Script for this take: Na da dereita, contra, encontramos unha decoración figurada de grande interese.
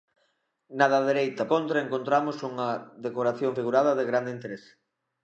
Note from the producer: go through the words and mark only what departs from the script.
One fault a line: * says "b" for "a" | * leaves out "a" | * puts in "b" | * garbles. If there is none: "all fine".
all fine